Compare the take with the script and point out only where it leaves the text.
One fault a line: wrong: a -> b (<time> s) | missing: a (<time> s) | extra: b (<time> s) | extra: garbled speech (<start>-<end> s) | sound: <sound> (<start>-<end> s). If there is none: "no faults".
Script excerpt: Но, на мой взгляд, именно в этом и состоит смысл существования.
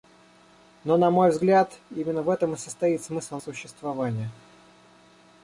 no faults